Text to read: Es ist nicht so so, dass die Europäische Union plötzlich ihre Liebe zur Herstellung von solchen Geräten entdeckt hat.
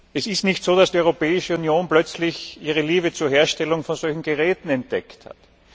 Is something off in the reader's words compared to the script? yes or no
yes